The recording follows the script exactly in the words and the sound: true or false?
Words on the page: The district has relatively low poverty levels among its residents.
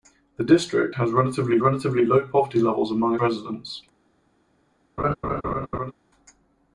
false